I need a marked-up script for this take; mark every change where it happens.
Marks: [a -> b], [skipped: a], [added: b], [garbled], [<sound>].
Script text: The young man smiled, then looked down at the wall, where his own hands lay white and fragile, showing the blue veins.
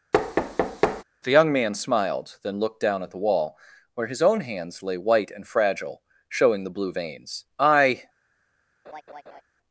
[thud] The young man smiled, then looked down at the wall, where his own hands lay white and fragile, showing the blue veins. [added: I] [laugh]